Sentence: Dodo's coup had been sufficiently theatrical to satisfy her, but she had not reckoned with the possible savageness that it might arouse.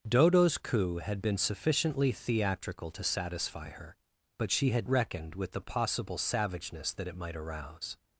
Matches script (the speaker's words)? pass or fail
fail